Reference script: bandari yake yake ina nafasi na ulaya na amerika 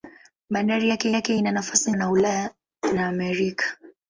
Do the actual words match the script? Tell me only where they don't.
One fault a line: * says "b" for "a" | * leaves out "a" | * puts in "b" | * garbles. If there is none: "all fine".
all fine